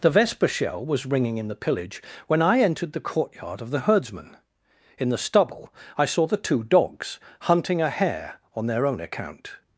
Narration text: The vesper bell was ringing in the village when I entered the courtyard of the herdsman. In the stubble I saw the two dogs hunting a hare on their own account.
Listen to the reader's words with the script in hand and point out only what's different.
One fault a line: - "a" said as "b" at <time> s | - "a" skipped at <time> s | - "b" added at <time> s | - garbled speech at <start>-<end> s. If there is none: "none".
- "bell" said as "shell" at 0.5 s
- "village" said as "pillage" at 1.6 s